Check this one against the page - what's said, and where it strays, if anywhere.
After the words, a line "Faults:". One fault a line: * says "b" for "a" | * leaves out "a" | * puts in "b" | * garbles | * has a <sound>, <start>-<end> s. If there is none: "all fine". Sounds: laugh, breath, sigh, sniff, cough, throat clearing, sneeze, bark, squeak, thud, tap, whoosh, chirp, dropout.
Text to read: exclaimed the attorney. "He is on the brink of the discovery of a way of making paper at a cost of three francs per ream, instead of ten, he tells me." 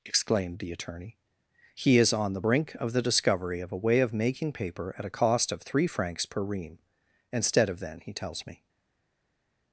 exclaimed the attorney. "He is on the brink of the discovery of a way of making paper at a cost of three francs per ream, instead of then, he tells me."
Faults:
* says "then" for "ten"